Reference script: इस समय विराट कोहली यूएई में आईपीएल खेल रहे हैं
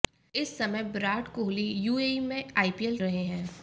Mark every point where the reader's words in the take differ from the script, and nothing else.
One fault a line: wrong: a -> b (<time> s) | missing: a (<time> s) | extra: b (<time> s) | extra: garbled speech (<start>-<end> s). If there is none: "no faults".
missing: खेल (3.0 s)